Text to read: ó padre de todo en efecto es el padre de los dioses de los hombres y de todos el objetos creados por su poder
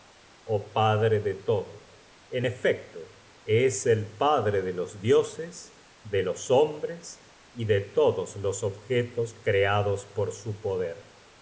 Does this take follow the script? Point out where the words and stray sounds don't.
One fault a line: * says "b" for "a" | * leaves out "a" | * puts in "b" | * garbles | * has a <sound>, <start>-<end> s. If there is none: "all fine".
* says "los" for "el"